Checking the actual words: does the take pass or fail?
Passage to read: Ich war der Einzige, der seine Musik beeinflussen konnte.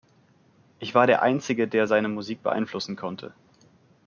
pass